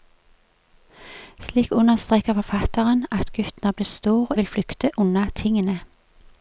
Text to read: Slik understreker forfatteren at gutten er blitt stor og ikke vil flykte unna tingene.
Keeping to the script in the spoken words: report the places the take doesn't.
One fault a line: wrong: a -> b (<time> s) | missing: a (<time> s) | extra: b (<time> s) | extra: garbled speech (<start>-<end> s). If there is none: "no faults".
missing: ikke (4.4 s)